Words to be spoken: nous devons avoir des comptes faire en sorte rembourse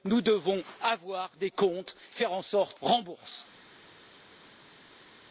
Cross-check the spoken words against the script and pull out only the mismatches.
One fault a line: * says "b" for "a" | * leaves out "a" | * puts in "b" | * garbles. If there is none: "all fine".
all fine